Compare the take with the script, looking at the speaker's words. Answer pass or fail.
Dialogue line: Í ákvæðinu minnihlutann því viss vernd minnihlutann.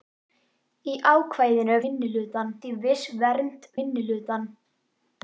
pass